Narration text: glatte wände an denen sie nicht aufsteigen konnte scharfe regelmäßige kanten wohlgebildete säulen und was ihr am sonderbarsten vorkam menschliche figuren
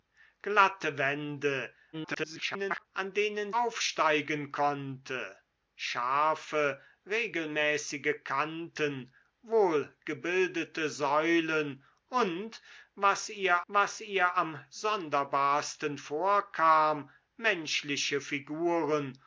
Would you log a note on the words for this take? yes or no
yes